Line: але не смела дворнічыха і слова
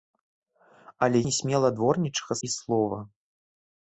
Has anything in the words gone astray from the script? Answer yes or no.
no